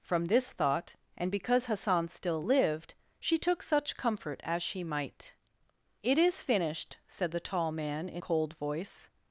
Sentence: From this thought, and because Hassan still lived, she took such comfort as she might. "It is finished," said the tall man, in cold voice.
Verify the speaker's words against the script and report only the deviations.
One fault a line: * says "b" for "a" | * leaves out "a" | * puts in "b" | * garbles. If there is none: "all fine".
all fine